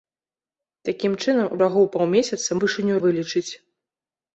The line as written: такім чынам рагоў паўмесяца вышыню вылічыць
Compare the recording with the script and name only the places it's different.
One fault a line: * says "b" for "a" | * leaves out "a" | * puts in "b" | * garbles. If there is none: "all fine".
all fine